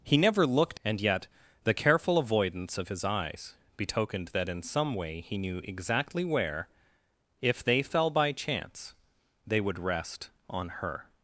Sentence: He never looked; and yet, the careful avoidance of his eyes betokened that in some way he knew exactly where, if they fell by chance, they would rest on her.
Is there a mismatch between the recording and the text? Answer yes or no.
no